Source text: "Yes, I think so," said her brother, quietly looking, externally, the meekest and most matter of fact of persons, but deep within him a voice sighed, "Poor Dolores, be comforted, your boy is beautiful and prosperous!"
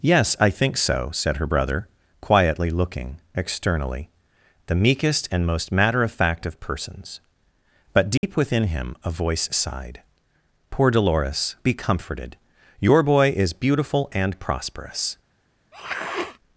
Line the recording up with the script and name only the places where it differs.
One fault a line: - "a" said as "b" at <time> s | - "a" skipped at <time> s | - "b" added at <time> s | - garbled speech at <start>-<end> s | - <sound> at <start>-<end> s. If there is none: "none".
- dropout at 8.2-8.2 s
- sniff at 15.7-16.4 s